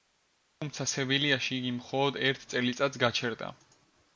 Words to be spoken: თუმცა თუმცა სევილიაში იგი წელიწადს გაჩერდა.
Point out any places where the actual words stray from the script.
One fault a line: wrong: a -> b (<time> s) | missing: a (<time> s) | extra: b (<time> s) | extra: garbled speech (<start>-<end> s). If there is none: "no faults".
missing: თუმცა (0.9 s)
extra: მხოლოდ ერთ (1.8 s)